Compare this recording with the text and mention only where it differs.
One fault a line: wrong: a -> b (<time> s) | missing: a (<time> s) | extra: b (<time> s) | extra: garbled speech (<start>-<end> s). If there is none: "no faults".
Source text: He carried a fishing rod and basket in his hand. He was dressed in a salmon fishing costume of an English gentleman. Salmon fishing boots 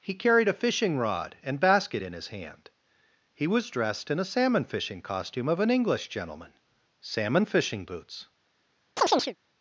no faults